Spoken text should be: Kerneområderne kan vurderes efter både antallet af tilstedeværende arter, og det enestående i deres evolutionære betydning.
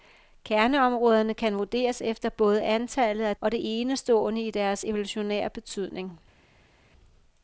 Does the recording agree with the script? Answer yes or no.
no